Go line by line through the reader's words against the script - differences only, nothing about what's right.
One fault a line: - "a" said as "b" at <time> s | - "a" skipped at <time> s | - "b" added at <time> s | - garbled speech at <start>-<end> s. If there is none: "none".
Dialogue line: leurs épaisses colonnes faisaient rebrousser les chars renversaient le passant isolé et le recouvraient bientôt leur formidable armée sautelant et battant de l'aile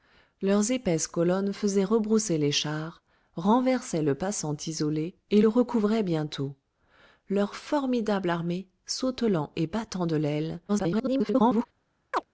- garbled speech at 10.7-11.7 s